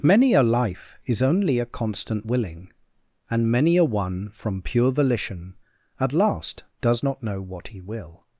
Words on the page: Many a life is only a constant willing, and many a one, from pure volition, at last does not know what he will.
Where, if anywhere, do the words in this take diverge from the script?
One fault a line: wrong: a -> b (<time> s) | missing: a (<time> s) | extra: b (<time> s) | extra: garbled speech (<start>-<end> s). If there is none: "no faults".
no faults